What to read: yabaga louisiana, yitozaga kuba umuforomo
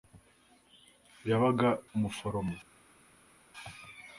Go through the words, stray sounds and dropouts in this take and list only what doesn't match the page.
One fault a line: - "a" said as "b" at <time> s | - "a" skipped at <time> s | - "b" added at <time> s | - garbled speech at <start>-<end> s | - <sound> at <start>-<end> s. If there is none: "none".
- "louisiana yitozaga kuba" skipped at 1.7 s